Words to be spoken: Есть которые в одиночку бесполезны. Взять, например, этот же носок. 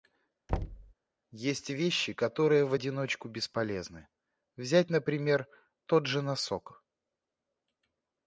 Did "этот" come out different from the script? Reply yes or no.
yes